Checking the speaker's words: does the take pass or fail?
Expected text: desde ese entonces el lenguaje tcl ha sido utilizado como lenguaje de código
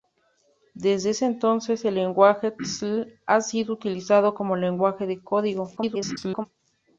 fail